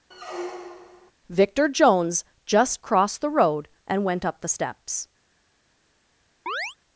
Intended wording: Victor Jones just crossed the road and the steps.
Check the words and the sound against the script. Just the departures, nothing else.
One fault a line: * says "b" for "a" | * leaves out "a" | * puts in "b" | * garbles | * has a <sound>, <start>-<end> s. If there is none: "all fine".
* has a squeak, 0.1-1.1 s
* puts in "went up"
* has a chirp, 6.5-6.8 s